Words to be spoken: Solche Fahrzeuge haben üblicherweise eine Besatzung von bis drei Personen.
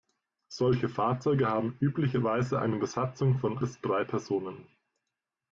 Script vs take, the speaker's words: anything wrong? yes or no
no